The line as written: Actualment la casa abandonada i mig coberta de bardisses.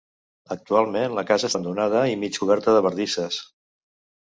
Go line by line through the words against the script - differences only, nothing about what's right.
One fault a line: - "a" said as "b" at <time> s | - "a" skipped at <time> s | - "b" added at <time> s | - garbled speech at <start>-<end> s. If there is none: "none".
none